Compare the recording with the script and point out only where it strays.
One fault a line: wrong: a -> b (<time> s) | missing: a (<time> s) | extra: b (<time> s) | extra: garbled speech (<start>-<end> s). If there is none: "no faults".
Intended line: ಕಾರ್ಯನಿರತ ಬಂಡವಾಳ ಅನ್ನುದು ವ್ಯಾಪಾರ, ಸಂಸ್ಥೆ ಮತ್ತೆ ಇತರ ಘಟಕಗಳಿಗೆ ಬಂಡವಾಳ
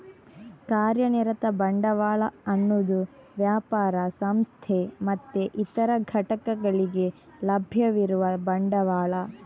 extra: ಲಭ್ಯವಿರುವ (7.4 s)